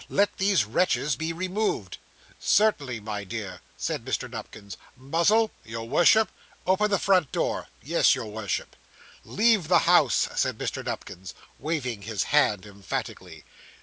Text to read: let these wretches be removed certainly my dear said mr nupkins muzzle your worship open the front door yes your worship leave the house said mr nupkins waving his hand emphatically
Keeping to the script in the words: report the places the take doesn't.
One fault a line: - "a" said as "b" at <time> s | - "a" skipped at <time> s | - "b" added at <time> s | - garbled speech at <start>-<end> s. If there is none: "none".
none